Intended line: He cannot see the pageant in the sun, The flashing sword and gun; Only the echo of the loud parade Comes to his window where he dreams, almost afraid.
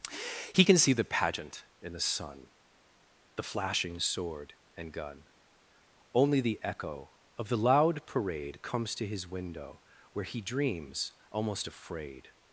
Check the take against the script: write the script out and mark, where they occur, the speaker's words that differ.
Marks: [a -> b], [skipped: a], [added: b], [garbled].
He [cannot -> can] see the pageant in the sun, The flashing sword and gun; Only the echo of the loud parade Comes to his window where he dreams, almost afraid.